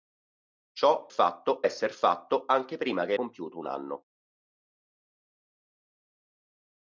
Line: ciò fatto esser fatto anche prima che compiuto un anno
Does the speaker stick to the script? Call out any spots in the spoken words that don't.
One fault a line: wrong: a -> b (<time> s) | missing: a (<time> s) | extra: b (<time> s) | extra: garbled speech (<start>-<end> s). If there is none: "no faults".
no faults